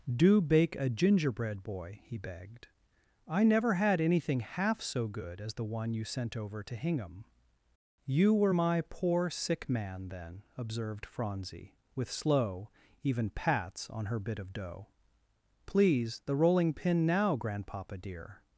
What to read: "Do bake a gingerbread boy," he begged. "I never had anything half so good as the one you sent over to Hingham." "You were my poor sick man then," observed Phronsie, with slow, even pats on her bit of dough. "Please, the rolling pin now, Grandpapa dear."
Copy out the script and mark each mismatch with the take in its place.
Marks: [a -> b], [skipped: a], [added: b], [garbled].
"Do bake a gingerbread boy," he begged. "I never had anything half so good as the one you sent over to Hingham." "You were my poor sick man then," observed Phronsie, with slow, even pats on her bit of dough. "Please, the rolling pin now, Grandpapa dear."